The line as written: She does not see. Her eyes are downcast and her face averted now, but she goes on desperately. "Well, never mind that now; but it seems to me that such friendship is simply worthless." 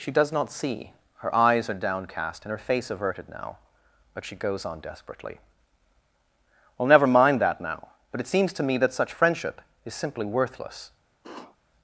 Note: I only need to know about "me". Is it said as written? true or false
true